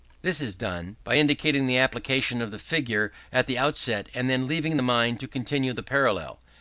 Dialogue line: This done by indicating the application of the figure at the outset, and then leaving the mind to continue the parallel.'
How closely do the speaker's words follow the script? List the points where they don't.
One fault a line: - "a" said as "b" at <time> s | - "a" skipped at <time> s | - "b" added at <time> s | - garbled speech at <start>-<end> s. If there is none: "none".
- "is" added at 0.4 s